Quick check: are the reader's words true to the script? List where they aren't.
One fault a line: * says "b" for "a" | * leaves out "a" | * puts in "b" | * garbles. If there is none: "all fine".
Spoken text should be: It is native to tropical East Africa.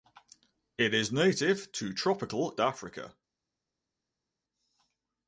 * leaves out "East"